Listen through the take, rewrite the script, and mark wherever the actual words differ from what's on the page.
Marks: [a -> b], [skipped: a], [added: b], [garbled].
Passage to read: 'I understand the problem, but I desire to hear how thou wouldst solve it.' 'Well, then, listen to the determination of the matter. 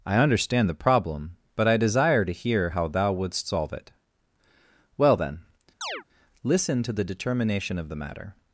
'I understand the problem, but I desire to hear how thou wouldst solve it.' 'Well, then, listen to the determination of the matter.